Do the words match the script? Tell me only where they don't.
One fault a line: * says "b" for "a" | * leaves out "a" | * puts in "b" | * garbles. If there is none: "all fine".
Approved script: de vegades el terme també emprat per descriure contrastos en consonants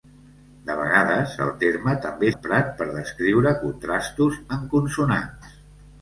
all fine